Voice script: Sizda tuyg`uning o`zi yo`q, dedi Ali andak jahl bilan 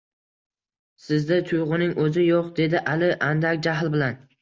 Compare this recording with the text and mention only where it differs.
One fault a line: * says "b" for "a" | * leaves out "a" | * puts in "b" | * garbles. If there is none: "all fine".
all fine